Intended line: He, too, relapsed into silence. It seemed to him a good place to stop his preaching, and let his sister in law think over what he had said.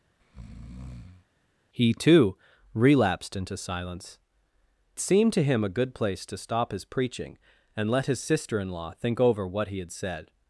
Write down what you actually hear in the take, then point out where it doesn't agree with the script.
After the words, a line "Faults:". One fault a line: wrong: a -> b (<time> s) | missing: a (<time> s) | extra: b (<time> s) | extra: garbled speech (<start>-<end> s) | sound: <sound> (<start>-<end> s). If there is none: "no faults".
He, too, relapsed into silence. Seemed to him a good place to stop his preaching, and let his sister in law think over what he had said.
Faults:
sound: breath (0.2-1.3 s)
missing: It (4.2 s)